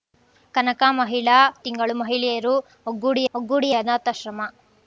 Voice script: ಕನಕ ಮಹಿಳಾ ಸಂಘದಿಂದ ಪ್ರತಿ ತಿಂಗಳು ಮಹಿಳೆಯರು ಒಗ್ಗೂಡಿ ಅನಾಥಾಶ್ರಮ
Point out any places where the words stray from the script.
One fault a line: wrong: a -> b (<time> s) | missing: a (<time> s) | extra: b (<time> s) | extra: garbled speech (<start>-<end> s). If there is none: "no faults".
missing: ಸಂಘದಿಂದ ಪ್ರತಿ (1.4 s)
extra: ಒಗ್ಗೂಡಿ (3.3 s)